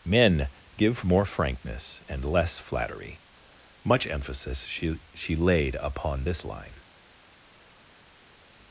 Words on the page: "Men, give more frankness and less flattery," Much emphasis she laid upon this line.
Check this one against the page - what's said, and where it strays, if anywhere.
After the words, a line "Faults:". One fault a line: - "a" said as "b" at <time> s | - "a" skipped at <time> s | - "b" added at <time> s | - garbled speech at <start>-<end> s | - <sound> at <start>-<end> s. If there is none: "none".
"Men, give more frankness and less flattery," Much emphasis she she laid upon this line.
Faults:
- "she" added at 5.1 s